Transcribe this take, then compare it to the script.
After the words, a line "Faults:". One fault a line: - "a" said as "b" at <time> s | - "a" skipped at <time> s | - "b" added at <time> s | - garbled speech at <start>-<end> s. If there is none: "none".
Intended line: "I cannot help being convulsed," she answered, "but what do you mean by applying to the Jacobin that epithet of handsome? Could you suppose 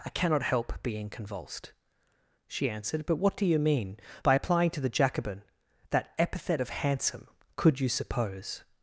"I cannot help being convulsed," she answered, "but what do you mean by applying to the Jacobin that epithet of handsome? Could you suppose
Faults:
none